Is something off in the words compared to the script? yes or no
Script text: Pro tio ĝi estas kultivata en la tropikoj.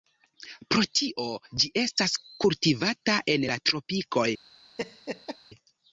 no